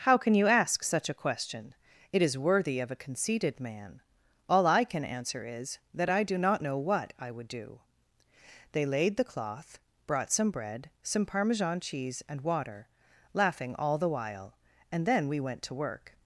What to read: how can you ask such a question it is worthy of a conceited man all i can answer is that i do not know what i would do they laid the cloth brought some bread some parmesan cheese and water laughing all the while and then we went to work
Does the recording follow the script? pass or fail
pass